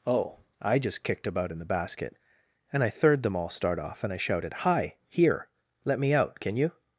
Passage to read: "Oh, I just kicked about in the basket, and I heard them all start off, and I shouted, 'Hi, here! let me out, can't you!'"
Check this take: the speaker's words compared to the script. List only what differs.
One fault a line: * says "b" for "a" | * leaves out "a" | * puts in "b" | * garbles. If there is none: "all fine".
* says "third" for "heard"
* says "can" for "can't"